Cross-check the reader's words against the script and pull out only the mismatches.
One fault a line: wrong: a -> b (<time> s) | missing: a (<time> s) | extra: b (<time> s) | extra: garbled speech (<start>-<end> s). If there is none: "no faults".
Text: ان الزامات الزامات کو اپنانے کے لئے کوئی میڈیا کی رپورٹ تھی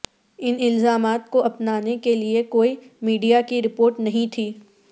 missing: الزامات (1.3 s)
extra: نہیں (4.0 s)